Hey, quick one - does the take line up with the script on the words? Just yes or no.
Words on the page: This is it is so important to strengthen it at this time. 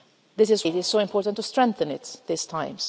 yes